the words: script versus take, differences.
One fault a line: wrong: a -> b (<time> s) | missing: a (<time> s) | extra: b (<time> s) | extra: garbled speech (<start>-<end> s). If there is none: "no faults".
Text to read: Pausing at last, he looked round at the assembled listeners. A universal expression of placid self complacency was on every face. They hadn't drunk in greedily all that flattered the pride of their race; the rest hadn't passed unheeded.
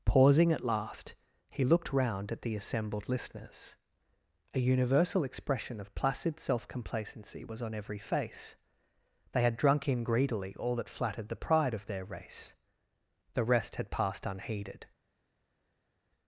wrong: hadn't -> had (9.4 s)
wrong: hadn't -> had (13.8 s)